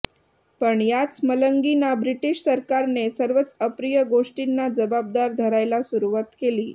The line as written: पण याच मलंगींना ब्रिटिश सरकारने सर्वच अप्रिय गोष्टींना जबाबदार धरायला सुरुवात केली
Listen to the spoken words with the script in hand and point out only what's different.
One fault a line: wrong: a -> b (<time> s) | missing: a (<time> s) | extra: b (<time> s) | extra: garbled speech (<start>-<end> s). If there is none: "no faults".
no faults